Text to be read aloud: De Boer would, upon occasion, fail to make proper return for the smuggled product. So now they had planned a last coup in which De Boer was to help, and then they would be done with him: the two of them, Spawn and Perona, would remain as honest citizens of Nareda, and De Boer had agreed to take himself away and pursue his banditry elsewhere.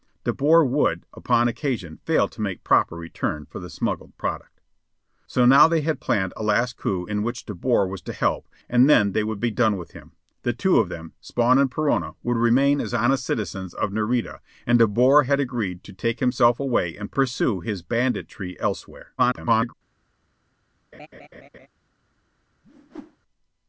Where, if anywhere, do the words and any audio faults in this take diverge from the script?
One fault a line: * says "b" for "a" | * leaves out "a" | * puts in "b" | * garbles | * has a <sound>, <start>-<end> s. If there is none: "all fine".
* garbles
* has a laugh, 20.9-21.7 s
* has a whoosh, 22.6-23.2 s